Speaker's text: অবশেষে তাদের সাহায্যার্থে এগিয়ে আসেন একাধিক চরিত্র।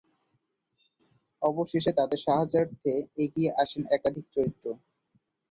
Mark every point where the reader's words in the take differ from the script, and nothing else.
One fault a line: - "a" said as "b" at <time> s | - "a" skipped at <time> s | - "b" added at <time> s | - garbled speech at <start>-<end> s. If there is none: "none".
none